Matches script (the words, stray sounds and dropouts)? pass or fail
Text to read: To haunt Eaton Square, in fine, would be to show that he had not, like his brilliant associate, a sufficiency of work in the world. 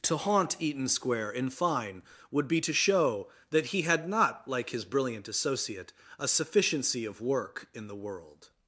pass